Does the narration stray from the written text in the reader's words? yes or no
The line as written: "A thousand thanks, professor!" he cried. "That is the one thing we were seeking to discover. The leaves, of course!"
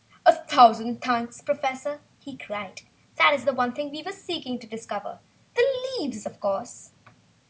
no